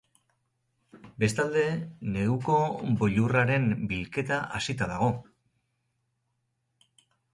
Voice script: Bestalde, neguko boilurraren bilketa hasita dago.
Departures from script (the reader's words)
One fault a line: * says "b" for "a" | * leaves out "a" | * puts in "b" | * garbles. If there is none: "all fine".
all fine